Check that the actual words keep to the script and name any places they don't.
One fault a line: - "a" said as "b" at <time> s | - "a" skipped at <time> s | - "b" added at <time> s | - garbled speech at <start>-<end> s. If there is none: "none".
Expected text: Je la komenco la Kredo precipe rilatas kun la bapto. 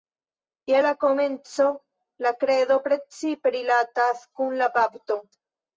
none